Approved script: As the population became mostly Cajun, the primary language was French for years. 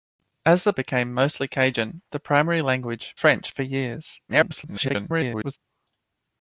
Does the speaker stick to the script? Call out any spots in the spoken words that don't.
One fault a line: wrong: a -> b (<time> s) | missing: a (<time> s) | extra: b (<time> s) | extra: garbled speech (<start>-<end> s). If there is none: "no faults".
missing: population (0.7 s)
missing: was (3.2 s)
extra: garbled speech (4.3-5.6 s)